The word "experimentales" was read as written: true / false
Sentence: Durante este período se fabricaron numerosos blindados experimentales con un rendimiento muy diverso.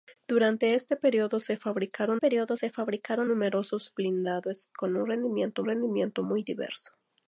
false